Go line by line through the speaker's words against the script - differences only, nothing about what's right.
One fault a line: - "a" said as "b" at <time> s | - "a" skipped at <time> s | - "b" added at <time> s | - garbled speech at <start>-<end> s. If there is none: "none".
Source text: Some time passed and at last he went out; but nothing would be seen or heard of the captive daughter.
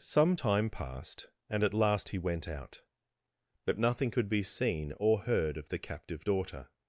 - "would" said as "could" at 4.1 s